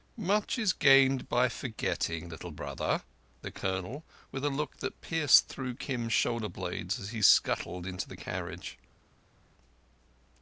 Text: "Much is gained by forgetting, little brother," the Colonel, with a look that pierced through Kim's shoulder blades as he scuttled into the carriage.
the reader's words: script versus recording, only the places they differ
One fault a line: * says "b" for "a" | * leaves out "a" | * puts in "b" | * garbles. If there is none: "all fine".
all fine